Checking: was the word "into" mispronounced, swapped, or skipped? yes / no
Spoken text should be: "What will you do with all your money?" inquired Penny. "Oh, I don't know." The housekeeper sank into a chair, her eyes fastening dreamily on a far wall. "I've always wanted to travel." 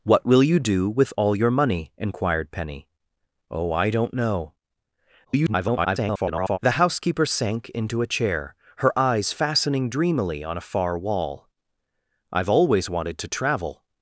no